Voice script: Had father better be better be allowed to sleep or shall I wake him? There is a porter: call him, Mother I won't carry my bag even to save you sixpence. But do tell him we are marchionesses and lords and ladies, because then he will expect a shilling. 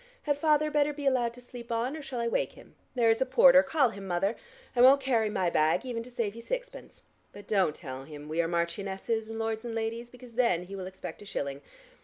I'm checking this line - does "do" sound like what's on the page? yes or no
no